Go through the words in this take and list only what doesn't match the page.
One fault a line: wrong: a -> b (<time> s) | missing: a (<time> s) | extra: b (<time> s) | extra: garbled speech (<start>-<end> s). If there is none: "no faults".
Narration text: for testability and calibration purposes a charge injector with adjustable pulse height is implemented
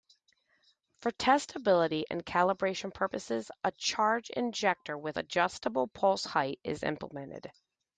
no faults